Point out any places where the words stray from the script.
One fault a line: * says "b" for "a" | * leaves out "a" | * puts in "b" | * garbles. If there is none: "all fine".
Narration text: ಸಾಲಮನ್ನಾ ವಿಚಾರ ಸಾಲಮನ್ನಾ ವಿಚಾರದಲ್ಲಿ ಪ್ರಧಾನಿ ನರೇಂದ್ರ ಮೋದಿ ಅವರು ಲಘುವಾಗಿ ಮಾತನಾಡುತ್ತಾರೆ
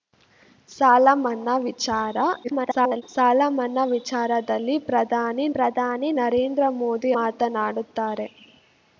* garbles
* puts in "ಪ್ರಧಾನಿ"
* leaves out "ಅವರು ಲಘುವಾಗಿ"